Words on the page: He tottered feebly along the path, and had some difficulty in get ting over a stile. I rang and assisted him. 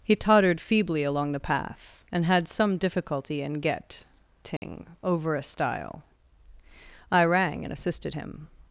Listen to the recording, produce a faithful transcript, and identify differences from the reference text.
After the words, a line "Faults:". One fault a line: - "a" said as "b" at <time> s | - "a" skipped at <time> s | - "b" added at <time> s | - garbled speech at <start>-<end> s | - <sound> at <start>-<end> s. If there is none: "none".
He tottered feebly along the path, and had some difficulty in get ting over a stile. I rang and assisted him.
Faults:
- dropout at 4.6-4.6 s